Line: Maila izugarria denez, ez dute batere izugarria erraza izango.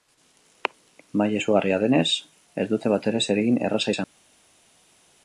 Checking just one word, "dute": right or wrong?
right